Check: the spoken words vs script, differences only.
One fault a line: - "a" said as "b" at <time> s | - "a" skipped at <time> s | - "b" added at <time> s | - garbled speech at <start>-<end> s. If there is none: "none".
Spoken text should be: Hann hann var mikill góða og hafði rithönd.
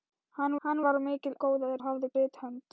none